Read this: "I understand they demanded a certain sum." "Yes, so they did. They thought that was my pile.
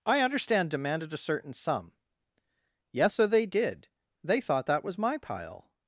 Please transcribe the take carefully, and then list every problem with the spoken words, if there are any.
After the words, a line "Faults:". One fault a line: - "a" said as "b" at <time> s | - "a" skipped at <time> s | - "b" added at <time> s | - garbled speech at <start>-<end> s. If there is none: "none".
"I understand demanded a certain sum." "Yes, so they did. They thought that was my pile.
Faults:
- "they" skipped at 0.7 s